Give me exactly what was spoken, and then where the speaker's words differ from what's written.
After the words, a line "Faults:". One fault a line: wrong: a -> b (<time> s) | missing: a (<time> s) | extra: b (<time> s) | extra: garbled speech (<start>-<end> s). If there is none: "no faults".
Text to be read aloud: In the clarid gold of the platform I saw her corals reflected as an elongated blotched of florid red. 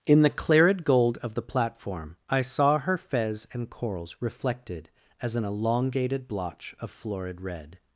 In the clarid gold of the platform I saw her fez and corals reflected as an elongated blotch of florid red.
Faults:
extra: fez and (3.0 s)
wrong: blotched -> blotch (6.3 s)